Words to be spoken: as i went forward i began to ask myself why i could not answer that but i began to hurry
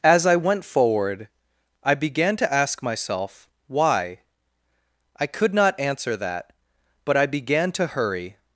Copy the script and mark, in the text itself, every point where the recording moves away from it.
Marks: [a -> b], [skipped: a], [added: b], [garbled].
as i went forward i began to ask myself why i could not answer that but i began to hurry